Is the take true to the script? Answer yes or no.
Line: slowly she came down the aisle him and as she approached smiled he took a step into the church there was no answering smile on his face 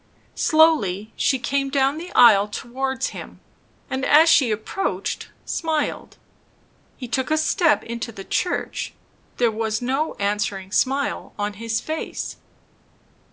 no